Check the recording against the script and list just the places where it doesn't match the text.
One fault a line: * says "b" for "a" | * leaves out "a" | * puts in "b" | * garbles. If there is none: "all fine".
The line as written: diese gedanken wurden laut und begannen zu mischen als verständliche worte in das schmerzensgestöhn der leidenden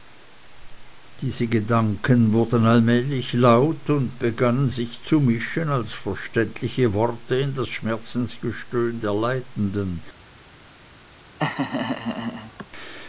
* puts in "allmählich"
* puts in "sich"